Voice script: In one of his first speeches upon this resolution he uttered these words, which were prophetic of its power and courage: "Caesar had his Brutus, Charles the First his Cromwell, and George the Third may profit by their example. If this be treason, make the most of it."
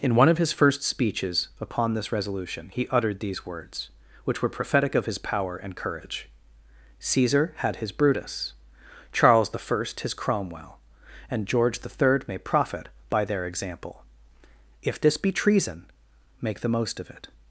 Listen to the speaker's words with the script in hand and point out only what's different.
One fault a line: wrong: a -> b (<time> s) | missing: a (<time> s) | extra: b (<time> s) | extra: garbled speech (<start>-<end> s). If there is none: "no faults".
wrong: its -> his (5.0 s)